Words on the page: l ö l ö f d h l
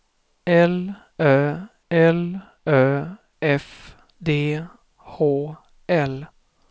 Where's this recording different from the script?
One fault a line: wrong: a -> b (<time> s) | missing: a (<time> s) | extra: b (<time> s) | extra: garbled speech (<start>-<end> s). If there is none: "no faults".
no faults